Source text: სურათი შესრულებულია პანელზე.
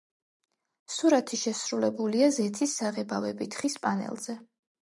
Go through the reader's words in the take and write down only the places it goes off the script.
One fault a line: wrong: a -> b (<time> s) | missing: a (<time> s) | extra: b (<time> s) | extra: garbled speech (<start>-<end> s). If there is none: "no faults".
extra: ზეთის საღებავებით ხის (2.4 s)